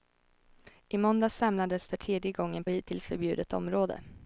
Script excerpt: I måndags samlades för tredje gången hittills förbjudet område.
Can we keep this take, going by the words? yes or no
yes